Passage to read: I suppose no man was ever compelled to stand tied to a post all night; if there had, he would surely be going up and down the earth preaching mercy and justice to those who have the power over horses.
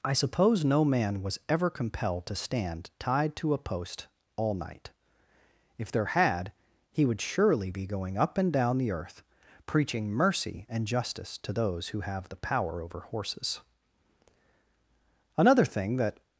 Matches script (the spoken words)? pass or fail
fail